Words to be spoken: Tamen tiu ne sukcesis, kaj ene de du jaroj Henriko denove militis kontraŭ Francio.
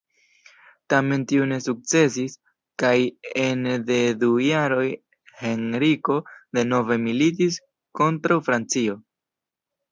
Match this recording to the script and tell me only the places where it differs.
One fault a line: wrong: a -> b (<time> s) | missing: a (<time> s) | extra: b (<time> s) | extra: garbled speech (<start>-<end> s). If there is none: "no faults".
no faults